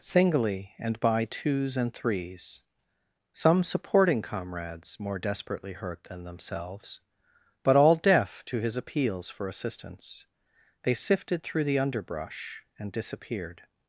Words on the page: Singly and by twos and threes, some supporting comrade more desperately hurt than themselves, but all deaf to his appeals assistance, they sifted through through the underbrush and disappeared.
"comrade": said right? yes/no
no